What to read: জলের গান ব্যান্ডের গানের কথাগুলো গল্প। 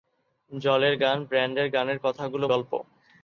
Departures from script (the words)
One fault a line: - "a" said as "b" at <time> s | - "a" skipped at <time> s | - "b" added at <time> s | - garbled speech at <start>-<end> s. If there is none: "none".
none